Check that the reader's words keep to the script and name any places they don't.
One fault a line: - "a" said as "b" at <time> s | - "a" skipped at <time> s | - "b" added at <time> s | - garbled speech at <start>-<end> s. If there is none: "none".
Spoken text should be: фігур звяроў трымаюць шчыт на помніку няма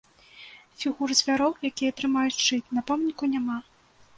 - "якія" added at 1.7 s